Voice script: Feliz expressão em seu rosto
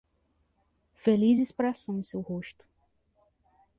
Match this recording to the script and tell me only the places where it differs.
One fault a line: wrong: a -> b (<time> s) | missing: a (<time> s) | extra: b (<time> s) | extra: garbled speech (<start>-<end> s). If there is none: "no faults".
no faults